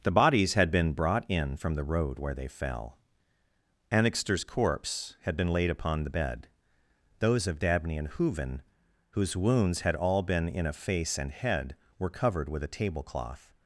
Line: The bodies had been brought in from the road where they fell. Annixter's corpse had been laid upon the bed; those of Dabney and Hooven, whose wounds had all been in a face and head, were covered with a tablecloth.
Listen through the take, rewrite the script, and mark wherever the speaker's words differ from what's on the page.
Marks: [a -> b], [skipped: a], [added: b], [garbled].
The bodies had been brought in from the road where they fell. Annixter's corpse had been laid upon the bed; those of Dabney and Hooven, whose wounds had all been in a face and head, were covered with a tablecloth.